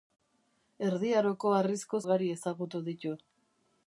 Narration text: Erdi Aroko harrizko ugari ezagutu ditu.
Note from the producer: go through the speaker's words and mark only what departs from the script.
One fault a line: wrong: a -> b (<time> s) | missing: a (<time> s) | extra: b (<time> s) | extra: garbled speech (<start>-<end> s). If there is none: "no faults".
no faults